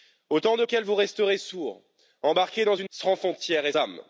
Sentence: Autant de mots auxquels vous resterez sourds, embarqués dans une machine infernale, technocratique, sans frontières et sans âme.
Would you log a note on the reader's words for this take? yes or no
yes